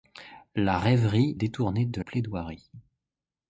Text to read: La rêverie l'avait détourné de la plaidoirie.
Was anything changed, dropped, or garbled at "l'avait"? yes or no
yes